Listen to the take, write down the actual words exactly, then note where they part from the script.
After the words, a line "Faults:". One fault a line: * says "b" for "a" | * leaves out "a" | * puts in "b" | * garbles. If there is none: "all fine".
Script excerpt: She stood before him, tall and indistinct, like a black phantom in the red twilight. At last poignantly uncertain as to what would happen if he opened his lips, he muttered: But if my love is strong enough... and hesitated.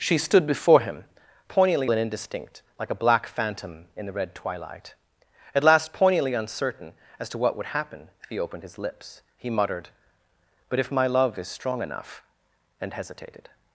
She stood before him, poignantly and indistinct, like a black phantom in the red twilight. At last poignantly uncertain as to what would happen if he opened his lips, he muttered: But if my love is strong enough... and hesitated.
Faults:
* says "poignantly" for "tall"